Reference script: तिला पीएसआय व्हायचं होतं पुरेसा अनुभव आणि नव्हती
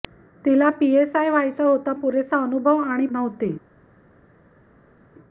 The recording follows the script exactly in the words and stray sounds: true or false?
true